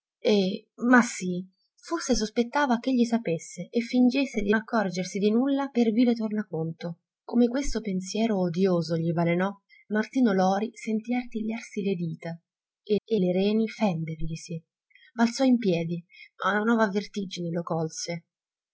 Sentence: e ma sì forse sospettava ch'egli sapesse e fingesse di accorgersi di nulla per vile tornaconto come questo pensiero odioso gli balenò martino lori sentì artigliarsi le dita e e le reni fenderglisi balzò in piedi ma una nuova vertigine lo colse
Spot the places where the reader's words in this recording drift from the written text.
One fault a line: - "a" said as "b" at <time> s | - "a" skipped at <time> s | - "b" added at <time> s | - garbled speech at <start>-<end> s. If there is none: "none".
none